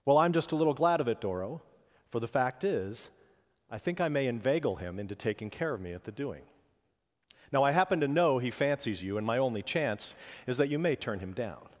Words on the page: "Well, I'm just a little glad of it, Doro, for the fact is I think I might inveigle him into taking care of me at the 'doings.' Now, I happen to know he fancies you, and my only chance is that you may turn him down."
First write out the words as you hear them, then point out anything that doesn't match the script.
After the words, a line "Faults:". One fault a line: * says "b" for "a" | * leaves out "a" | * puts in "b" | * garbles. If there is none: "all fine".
"Well, I'm just a little glad of it, Doro, for the fact is I think I may inveigle him into taking care of me at the 'doing.' Now, I happen to know he fancies you, and my only chance is that you may turn him down."
Faults:
* says "may" for "might"
* says "doing" for "doings"